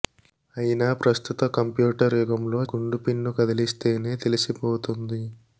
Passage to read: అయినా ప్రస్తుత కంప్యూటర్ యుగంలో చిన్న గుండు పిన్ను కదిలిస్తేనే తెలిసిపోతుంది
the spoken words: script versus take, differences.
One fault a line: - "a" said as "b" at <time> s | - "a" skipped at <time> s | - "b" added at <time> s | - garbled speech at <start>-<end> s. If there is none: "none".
- "చిన్న" skipped at 2.6 s